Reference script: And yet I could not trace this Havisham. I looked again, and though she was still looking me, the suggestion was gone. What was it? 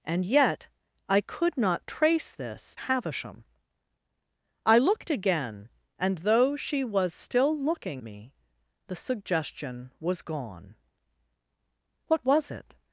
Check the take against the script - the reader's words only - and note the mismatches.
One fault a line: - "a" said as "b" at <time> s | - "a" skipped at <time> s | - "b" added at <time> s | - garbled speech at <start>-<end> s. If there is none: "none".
none